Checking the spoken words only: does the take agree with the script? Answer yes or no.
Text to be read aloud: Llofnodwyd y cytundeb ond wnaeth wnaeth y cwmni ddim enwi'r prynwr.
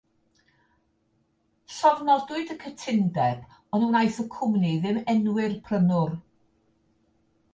no